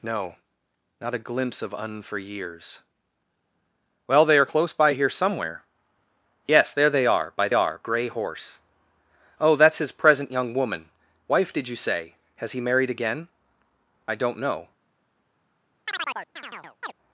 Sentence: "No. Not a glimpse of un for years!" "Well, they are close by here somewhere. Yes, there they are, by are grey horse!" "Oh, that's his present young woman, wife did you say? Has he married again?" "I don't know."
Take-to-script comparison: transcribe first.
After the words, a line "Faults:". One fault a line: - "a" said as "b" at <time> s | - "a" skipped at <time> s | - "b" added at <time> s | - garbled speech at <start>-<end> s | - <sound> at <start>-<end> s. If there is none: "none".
"No. Not a glimpse of un for years!" "Well, they are close by here somewhere. Yes, there they are, by are grey horse!" "Oh, that's his present young woman, wife did you say? Has he married again?" "I don't know."
Faults:
- chirp at 15.9-16.9 s